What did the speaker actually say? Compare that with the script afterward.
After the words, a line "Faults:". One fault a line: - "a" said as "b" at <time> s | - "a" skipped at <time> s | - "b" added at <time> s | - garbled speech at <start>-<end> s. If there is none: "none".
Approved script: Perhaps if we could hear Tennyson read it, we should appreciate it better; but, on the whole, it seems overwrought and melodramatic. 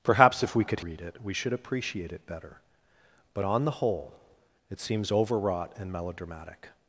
Perhaps if we could read it, we should appreciate it better; but, on the whole, it seems overwrought and melodramatic.
Faults:
- "hear Tennyson" skipped at 0.8 s